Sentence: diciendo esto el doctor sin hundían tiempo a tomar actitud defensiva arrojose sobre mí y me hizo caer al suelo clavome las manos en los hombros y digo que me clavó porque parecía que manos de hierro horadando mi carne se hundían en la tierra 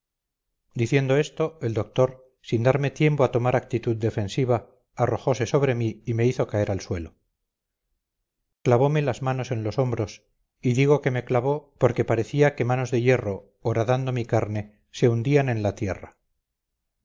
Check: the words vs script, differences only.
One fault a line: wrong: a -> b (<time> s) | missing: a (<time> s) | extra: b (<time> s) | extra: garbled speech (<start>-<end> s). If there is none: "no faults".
wrong: hundían -> darme (2.6 s)